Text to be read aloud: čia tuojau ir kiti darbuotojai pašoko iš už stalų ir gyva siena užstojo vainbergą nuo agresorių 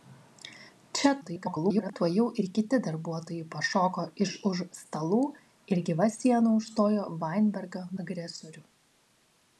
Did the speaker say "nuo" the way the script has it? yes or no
no